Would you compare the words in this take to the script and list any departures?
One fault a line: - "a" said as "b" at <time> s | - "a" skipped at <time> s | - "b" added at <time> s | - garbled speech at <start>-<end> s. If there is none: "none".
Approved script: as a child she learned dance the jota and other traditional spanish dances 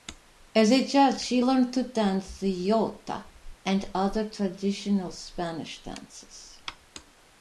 - "to" added at 1.7 s